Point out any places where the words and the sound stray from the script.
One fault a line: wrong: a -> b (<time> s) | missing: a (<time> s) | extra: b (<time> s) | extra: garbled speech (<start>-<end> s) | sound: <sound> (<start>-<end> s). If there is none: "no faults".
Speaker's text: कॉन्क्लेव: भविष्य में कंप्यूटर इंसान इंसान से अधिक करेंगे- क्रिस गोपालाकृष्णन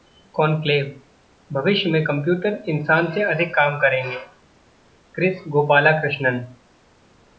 missing: इंसान (3.1 s)
extra: काम (3.5 s)